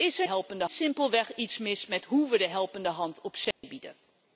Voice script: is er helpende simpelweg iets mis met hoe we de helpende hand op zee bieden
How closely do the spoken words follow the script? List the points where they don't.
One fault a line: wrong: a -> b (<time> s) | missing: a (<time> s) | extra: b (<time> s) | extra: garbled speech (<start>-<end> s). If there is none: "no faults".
no faults